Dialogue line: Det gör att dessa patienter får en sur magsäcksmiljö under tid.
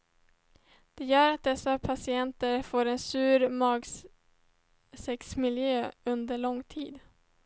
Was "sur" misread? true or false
false